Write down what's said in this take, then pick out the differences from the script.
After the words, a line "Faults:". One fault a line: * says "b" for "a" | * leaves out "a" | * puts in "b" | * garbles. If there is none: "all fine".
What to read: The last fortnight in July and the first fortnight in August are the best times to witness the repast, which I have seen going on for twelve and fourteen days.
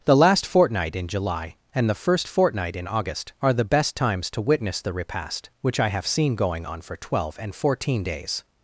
The last fortnight in July and the first fortnight in August are the best times to witness the repast, which I have seen going on for twelve and fourteen days.
Faults:
all fine